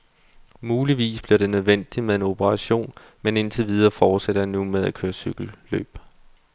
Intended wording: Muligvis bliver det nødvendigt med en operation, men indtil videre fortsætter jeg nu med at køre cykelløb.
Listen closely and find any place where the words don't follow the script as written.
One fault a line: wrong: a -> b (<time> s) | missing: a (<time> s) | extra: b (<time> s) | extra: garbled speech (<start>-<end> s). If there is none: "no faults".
no faults